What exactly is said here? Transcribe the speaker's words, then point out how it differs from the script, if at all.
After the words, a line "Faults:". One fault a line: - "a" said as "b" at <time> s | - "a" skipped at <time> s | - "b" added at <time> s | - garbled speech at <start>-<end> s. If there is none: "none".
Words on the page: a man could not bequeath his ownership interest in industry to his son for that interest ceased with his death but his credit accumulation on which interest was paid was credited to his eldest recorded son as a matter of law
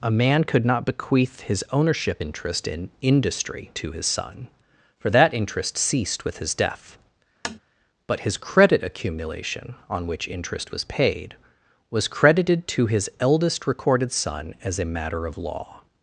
a man could not bequeath his ownership interest in industry to his son for that interest ceased with his death but his credit accumulation on which interest was paid was credited to his eldest recorded son as a matter of law
Faults:
none